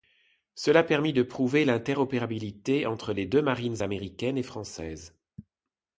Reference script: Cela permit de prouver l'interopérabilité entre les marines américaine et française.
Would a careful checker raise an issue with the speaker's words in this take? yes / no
yes